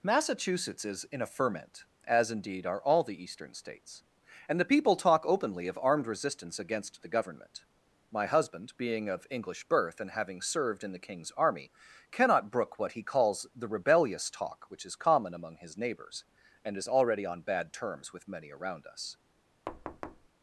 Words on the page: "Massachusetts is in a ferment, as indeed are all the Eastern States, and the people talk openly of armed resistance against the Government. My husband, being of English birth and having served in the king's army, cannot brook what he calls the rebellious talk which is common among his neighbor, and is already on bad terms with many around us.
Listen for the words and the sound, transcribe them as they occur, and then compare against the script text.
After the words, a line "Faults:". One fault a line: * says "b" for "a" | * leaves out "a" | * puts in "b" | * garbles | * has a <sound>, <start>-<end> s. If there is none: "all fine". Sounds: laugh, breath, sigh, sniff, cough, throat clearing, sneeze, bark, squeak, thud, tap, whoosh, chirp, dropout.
"Massachusetts is in a ferment, as indeed are all the Eastern States, and the people talk openly of armed resistance against the Government. My husband, being of English birth and having served in the king's army, cannot brook what he calls the rebellious talk which is common among his neighbors, and is already on bad terms with many around us.
Faults:
* says "neighbors" for "neighbor"
* has a thud, 19.7-20.3 s